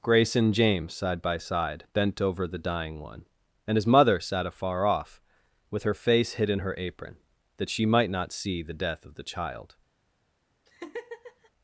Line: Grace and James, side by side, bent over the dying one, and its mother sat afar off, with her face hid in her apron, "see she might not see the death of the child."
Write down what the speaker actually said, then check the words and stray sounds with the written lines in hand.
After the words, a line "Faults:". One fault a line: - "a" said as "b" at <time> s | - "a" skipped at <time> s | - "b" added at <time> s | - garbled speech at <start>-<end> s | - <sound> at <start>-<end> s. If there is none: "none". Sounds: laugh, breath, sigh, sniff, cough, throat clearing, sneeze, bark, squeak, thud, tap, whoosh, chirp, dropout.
Grace and James, side by side, bent over the dying one, and his mother sat afar off, with her face hid in her apron, "that she might not see the death of the child."
Faults:
- "its" said as "his" at 3.8 s
- "see" said as "that" at 7.6 s
- laugh at 10.7-11.5 s